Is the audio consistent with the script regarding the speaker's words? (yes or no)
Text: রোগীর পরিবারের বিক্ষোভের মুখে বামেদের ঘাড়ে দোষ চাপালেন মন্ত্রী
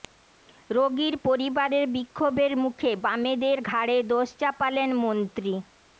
yes